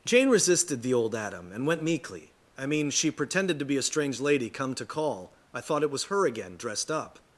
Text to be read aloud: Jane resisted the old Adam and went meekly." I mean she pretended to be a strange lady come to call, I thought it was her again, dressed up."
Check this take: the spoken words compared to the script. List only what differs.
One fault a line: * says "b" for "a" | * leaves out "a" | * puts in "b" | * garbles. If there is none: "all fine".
all fine